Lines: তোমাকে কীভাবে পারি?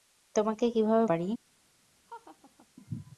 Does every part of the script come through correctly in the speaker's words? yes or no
yes